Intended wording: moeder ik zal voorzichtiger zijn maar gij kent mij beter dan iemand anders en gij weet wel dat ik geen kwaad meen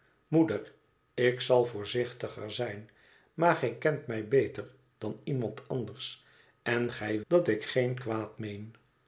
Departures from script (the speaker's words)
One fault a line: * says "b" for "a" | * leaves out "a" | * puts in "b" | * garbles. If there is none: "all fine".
* leaves out "weet wel"